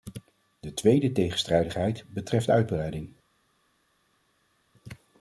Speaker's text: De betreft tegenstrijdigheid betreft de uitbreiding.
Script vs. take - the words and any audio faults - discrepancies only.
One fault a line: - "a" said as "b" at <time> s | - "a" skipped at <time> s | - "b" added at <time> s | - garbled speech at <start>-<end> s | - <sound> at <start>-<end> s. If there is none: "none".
- "betreft" said as "tweede" at 0.7 s